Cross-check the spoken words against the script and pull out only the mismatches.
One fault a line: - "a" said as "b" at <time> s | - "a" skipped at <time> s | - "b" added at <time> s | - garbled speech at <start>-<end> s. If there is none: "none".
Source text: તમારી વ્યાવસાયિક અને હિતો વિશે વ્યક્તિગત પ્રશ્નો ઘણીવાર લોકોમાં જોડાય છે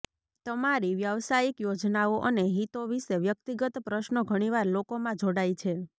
- "યોજનાઓ" added at 1.6 s